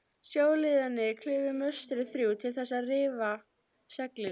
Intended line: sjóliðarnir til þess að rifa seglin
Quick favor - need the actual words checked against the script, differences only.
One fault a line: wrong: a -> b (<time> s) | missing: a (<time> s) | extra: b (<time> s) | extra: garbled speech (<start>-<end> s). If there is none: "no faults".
extra: klifu möstrin þrjú (1.2 s)